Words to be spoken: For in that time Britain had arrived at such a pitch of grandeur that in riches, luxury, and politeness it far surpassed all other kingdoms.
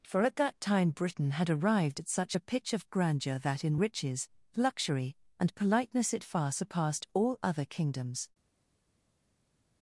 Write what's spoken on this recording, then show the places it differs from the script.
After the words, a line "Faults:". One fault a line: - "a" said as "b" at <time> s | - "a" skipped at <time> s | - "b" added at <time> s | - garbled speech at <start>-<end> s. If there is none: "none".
For at that time Britain had arrived at such a pitch of grandeur that in riches, luxury, and politeness it far surpassed all other kingdoms.
Faults:
- "in" said as "at" at 0.2 s